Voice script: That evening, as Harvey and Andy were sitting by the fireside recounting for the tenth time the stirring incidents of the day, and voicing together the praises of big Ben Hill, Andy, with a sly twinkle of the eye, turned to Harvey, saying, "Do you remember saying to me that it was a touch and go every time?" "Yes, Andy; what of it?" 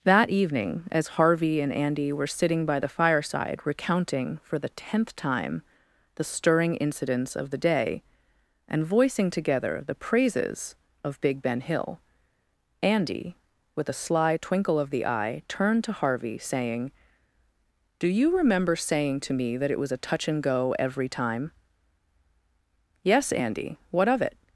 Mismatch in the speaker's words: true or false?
false